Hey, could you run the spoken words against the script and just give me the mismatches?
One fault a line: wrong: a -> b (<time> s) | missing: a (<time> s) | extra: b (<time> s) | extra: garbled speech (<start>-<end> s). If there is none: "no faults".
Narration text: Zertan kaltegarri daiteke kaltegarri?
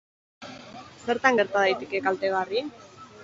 wrong: kaltegarri -> gerta (1.4 s)